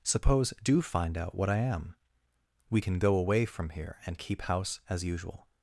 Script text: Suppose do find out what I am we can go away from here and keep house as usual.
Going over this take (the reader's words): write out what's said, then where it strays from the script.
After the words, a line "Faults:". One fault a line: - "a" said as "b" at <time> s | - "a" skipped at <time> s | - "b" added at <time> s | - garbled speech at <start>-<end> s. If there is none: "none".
Suppose do find out what I am we can go away from here and keep house as usual.
Faults:
none